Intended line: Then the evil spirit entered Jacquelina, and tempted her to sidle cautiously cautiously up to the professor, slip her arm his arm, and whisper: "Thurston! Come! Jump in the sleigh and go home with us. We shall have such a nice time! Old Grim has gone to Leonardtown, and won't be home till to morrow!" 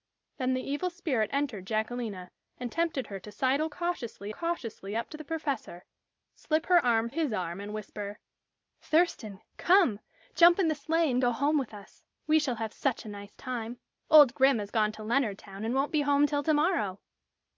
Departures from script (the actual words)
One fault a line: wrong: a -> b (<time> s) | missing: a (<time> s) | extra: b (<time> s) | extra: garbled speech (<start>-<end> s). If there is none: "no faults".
no faults